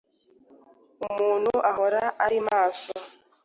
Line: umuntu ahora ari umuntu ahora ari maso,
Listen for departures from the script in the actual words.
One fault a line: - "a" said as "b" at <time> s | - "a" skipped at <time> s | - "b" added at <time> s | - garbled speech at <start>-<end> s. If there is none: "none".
- "umuntu ahora ari" skipped at 2.4 s